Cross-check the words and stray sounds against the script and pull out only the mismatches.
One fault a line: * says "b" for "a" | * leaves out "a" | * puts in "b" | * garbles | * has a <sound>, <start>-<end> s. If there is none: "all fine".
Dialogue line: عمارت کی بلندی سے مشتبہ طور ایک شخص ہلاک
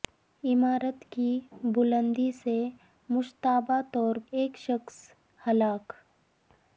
all fine